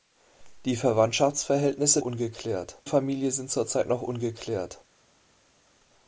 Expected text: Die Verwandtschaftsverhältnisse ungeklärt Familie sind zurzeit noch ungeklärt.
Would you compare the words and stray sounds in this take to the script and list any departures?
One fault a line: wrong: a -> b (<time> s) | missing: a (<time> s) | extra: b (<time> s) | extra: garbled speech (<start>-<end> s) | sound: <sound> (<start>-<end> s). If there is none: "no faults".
no faults